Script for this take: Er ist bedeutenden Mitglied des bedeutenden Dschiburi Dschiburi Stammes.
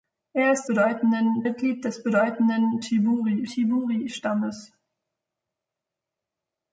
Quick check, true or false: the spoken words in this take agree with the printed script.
true